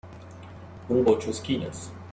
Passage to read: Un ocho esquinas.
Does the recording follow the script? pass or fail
pass